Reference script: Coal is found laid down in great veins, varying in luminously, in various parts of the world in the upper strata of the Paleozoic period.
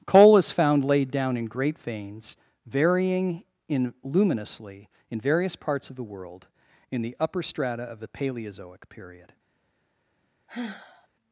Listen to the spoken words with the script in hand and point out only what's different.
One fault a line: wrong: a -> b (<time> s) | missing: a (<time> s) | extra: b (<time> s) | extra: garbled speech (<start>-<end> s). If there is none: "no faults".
no faults